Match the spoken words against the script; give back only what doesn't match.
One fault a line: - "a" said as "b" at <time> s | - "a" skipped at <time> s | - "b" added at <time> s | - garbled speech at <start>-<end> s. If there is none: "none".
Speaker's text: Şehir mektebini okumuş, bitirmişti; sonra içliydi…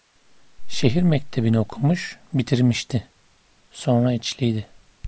none